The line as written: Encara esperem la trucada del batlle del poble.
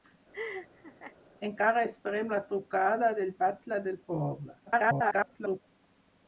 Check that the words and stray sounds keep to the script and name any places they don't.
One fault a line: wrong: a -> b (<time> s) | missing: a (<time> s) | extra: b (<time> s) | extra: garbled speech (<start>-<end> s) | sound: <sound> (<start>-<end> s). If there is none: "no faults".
sound: laugh (0.3-1.2 s)
extra: garbled speech (4.7-5.6 s)